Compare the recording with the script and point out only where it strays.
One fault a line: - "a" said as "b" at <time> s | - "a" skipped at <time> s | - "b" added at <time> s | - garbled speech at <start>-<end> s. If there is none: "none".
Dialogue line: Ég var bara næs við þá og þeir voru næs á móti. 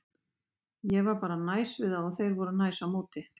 none